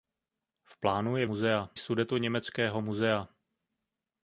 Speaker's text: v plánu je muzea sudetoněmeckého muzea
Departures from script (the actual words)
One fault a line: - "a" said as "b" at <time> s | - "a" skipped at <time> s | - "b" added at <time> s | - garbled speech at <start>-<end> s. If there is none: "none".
none